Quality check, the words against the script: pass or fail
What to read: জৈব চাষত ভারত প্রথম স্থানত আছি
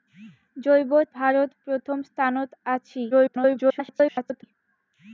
fail